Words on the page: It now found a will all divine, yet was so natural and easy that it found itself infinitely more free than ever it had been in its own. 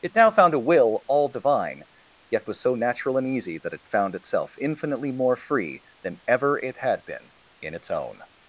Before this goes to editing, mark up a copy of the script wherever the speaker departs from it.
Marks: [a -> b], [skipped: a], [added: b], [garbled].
It now found a will all divine, yet was so natural and easy that it found itself infinitely more free than ever it had been in its own.